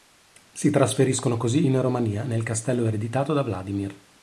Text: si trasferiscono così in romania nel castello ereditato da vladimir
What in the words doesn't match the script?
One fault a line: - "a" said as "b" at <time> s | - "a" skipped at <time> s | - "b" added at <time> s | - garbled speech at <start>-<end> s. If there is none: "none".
none